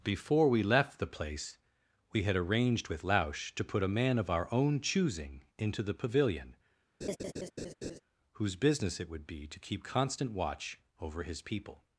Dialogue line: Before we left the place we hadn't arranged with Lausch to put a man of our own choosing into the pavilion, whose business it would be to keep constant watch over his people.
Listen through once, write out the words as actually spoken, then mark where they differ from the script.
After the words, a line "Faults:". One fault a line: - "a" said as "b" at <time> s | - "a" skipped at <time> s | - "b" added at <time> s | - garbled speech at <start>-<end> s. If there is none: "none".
Before we left the place we had arranged with Lausch to put a man of our own choosing into the pavilion, whose business it would be to keep constant watch over his people.
Faults:
- "hadn't" said as "had" at 2.2 s